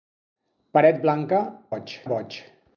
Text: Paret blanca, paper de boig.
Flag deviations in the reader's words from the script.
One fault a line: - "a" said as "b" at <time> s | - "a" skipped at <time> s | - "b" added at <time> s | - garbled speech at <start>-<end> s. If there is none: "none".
- "paper" said as "boig" at 1.7 s